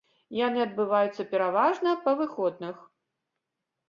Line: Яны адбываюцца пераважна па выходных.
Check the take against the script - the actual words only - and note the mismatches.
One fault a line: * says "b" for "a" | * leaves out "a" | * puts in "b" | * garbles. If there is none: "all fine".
all fine